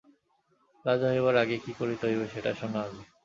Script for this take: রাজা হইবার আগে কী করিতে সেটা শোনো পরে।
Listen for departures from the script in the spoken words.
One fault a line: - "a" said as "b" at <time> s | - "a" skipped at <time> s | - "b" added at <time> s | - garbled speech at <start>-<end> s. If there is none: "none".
- "হইবে" added at 2.1 s
- "পরে" said as "আগে" at 2.9 s